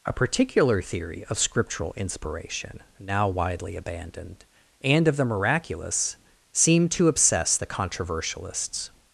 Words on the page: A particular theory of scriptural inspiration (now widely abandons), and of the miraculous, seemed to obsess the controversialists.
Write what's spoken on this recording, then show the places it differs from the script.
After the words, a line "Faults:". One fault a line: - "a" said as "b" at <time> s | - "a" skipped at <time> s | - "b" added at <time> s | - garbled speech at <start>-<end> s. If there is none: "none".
A particular theory of scriptural inspiration (now widely abandoned), and of the miraculous, seemed to obsess the controversialists.
Faults:
- "abandons" said as "abandoned" at 3.8 s